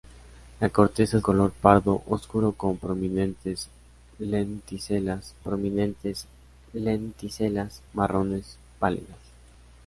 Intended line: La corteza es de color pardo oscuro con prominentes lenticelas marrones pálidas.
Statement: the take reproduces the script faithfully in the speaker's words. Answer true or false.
false